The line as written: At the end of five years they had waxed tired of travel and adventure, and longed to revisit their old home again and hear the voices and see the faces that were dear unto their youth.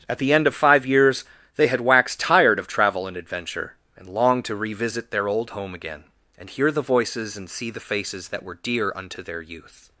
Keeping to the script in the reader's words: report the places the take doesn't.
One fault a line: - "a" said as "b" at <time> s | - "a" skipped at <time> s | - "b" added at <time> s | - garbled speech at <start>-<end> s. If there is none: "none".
none